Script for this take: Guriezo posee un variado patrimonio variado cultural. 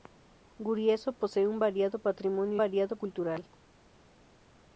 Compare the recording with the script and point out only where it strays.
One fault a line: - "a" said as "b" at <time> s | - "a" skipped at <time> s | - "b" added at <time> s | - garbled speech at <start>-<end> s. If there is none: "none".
none